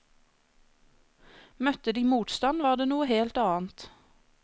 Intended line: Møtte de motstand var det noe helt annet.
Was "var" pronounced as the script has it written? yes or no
yes